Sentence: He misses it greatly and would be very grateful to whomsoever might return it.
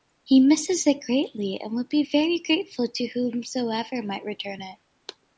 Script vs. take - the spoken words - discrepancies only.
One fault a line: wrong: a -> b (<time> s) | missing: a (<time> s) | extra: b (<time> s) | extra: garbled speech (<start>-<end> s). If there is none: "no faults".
no faults